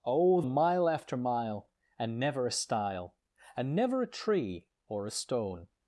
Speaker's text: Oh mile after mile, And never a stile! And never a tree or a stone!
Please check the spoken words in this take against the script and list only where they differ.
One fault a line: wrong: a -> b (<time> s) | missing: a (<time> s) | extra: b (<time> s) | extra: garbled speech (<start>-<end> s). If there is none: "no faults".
no faults